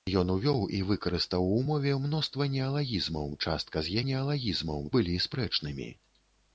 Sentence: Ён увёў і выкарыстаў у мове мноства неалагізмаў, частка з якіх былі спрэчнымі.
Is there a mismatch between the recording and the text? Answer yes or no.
yes